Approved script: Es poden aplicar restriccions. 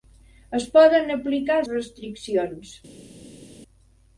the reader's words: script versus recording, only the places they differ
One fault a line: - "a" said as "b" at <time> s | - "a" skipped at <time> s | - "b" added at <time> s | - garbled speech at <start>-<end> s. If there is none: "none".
none